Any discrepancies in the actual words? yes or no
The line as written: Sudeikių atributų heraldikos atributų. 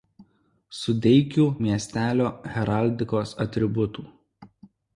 yes